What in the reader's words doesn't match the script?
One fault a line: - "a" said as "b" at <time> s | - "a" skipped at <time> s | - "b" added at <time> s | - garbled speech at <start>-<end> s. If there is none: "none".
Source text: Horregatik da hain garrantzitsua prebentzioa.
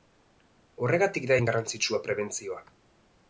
none